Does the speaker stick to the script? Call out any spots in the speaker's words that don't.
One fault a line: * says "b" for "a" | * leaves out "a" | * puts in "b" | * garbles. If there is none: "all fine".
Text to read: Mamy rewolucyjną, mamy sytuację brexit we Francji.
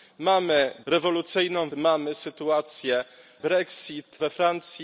all fine